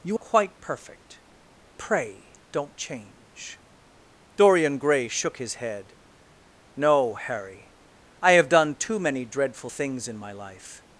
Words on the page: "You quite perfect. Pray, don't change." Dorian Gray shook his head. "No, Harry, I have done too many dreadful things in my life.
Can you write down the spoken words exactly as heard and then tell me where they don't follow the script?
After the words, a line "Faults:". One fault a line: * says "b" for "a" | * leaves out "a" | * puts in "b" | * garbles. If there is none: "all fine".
"You quite perfect. Pray, don't change." Dorian Gray shook his head. "No, Harry, I have done too many dreadful things in my life.
Faults:
all fine